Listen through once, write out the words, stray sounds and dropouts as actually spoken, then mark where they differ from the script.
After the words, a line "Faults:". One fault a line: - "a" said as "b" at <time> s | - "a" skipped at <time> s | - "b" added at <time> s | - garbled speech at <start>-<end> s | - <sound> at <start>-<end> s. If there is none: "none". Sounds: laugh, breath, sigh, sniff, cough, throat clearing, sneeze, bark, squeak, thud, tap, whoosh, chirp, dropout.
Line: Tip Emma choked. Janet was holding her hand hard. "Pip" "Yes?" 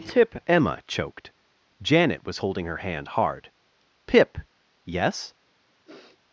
Tip Emma choked. Janet was holding her hand hard. "Pip" "Yes?"
Faults:
- sniff at 5.9-6.2 s